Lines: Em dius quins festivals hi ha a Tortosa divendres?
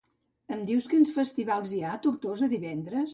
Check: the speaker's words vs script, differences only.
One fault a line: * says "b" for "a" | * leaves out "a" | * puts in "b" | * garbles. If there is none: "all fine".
all fine